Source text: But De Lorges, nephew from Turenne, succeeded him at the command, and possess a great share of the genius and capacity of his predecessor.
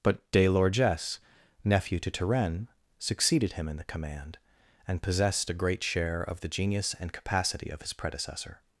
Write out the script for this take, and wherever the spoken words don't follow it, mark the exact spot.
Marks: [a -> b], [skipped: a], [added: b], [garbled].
But De Lorges, nephew [from -> to] Turenne, succeeded him [at -> in] the command, and [possess -> possessed] a great share of the genius and capacity of his predecessor.